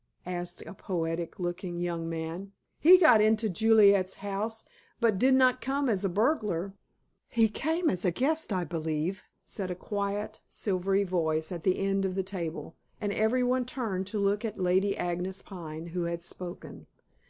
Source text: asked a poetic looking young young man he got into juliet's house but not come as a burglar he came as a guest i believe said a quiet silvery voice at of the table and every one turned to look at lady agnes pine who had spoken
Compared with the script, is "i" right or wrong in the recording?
right